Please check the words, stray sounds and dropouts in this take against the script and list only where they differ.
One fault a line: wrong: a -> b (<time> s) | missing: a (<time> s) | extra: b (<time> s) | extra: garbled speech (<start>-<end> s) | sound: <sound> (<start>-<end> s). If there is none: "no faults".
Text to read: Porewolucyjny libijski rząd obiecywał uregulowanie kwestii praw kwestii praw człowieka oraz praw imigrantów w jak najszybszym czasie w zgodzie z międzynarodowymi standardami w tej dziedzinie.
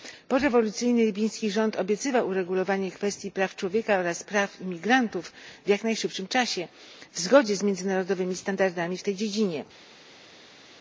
missing: kwestii praw (3.5 s)